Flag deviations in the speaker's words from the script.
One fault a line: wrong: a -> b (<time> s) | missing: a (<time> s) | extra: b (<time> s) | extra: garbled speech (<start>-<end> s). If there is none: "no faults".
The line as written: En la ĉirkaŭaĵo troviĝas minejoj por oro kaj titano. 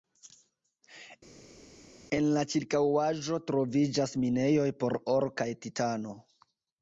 no faults